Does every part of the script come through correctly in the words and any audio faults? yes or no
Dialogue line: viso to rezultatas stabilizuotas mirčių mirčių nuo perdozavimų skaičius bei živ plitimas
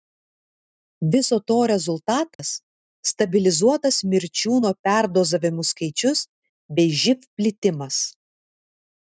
no